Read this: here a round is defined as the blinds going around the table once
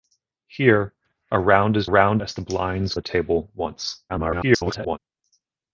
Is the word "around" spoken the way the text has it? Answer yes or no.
no